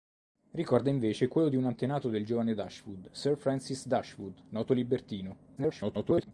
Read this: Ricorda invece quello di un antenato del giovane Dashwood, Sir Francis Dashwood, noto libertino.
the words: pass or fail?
fail